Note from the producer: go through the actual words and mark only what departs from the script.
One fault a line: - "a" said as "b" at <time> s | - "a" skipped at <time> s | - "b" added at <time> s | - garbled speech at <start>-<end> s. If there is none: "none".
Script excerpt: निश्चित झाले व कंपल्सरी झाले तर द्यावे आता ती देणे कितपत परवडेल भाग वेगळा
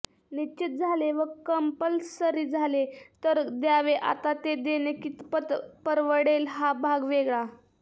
- "ती" said as "ते" at 4.4 s
- "हा" added at 6.5 s